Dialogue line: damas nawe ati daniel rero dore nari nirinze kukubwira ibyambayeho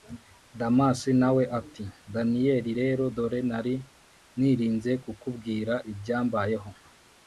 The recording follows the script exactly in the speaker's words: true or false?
true